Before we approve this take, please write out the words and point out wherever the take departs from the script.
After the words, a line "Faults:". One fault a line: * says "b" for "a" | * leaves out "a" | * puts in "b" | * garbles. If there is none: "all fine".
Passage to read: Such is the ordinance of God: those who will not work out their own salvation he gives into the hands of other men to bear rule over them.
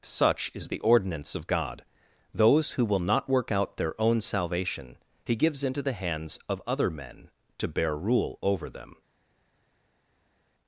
Such is the ordinance of God: those who will not work out their own salvation he gives into the hands of other men to bear rule over them.
Faults:
all fine